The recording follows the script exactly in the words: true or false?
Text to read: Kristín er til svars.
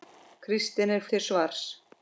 true